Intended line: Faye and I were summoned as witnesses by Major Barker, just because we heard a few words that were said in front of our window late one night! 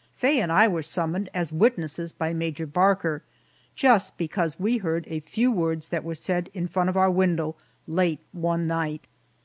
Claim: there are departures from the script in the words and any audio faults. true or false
false